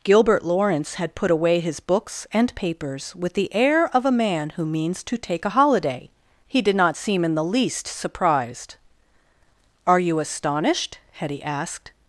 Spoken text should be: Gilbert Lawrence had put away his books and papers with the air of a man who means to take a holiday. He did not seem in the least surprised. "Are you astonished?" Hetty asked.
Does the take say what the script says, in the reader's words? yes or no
yes